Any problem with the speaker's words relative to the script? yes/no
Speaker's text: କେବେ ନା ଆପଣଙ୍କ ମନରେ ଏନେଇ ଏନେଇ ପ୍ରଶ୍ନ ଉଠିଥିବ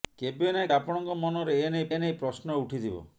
no